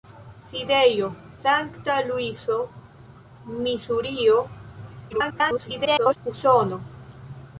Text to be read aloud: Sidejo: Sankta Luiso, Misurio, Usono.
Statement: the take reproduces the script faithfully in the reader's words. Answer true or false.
false